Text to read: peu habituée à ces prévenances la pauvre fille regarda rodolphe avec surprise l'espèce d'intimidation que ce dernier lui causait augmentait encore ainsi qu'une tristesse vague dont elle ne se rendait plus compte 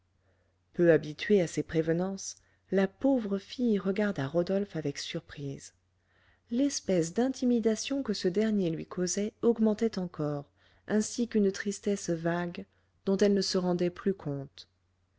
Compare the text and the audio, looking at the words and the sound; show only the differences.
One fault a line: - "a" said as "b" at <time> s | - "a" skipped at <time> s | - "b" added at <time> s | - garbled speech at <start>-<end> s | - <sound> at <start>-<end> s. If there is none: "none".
none